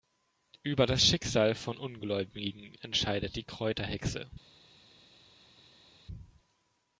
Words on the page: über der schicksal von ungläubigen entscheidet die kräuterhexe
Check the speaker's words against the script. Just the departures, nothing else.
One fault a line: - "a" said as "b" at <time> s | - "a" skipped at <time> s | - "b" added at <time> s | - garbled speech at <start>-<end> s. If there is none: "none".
- "der" said as "das" at 0.9 s